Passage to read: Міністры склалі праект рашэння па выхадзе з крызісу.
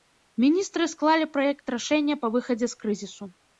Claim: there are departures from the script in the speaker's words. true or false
false